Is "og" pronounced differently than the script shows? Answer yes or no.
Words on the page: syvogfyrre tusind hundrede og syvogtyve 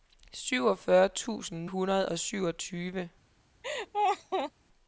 no